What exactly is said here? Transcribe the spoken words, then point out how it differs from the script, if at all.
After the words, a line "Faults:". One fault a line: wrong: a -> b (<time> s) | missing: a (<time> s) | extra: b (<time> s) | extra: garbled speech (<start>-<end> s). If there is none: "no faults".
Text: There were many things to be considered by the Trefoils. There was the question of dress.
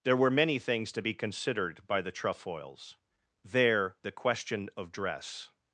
There were many things to be considered by the Trefoils. There the question of dress.
Faults:
missing: was (4.0 s)